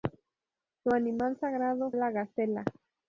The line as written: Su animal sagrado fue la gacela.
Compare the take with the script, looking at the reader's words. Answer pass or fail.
fail